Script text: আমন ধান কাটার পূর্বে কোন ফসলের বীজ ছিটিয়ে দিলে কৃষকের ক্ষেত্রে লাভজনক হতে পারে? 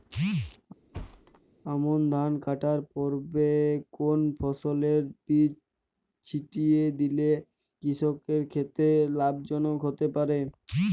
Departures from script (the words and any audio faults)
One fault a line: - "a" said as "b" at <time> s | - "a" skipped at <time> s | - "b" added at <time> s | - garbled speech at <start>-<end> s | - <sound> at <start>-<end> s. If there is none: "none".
- thud at 0.9-1.4 s